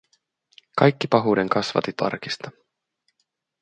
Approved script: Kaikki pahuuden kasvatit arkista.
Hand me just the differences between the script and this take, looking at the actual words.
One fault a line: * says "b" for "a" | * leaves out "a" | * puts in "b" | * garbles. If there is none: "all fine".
all fine